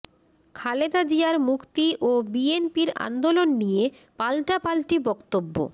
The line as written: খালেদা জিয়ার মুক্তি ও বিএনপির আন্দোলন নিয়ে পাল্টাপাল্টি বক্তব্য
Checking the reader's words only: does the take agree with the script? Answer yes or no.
yes